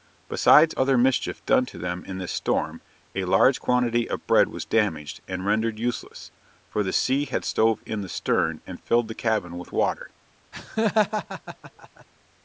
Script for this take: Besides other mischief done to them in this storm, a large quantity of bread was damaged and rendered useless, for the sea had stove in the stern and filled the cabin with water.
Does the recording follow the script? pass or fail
pass